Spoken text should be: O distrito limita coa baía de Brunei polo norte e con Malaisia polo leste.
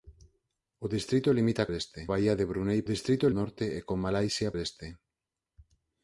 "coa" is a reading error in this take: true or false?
true